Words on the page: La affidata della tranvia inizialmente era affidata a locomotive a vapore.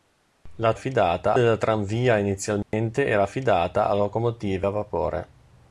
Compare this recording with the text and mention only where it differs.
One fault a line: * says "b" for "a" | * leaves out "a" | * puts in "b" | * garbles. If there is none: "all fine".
all fine